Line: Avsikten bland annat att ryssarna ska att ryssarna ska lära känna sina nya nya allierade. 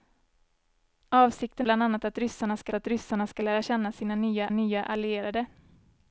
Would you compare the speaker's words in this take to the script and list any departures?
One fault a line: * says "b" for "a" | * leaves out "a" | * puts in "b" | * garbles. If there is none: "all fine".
all fine